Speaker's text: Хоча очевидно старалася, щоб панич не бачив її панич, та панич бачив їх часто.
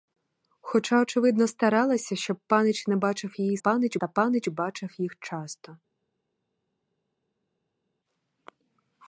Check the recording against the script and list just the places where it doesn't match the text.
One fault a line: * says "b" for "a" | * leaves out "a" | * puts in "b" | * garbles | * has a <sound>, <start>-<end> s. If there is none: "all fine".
all fine